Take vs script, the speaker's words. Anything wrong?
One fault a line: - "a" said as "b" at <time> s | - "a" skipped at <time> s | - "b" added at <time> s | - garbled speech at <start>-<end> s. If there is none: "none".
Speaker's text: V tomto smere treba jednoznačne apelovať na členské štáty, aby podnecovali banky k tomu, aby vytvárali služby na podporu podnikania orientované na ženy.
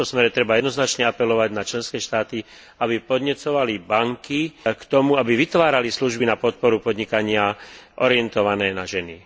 none